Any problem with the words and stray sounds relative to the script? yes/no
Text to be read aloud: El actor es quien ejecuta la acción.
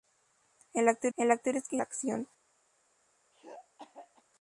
yes